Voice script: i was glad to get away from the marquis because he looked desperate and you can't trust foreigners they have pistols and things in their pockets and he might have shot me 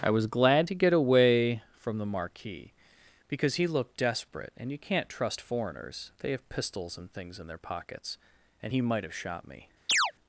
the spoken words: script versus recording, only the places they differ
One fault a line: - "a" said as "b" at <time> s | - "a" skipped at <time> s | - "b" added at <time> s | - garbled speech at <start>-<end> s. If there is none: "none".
none